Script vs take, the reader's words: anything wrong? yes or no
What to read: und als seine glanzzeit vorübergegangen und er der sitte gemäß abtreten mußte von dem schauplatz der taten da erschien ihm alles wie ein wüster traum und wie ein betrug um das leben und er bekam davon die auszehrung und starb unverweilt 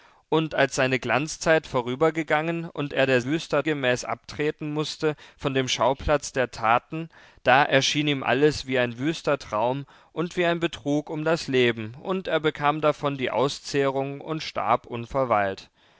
yes